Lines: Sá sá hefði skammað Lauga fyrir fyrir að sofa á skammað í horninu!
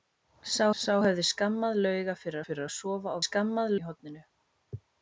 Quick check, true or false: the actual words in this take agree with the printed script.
true